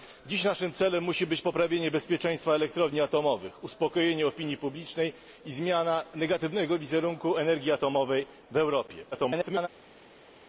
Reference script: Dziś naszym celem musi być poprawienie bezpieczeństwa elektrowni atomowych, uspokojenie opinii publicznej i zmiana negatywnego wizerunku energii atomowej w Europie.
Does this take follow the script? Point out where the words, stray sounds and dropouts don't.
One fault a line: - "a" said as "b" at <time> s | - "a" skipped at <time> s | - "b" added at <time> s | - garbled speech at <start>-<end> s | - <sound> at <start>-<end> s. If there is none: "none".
- garbled speech at 9.1-9.7 s